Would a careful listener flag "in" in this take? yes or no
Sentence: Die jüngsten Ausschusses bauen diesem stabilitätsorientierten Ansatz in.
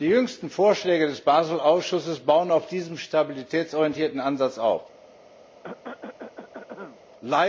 yes